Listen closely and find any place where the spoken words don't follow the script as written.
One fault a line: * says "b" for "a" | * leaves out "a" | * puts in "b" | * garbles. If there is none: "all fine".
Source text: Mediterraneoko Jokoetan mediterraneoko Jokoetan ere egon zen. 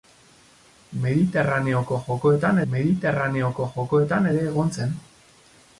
all fine